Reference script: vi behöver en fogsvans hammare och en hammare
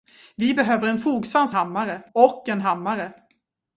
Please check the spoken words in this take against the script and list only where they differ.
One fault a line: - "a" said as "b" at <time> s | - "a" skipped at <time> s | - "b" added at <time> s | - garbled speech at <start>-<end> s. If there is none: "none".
none